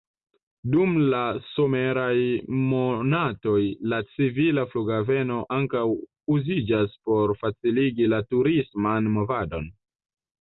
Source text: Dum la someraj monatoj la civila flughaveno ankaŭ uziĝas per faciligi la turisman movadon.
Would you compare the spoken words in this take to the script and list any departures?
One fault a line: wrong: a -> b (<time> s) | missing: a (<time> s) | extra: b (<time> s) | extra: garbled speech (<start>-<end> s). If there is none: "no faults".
wrong: per -> por (7.1 s)